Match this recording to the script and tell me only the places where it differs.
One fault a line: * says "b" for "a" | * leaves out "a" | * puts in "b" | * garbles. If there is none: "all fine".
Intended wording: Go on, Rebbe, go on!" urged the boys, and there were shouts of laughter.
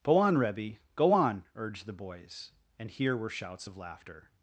* says "here" for "there"